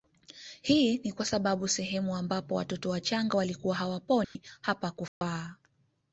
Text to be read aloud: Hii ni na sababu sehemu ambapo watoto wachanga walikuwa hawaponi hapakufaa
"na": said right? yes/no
no